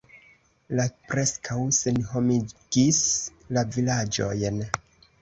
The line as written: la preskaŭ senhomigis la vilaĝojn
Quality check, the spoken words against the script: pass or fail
pass